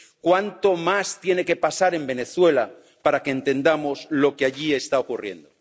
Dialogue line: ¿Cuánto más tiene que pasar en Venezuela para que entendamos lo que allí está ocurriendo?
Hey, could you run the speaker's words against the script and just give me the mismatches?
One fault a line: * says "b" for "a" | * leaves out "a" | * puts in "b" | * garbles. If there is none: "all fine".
all fine